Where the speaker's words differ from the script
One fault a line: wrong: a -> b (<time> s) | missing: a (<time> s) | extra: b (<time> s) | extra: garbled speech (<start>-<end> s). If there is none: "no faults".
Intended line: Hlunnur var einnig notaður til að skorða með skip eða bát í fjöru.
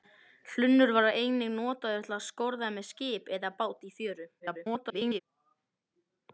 extra: garbled speech (4.4-5.2 s)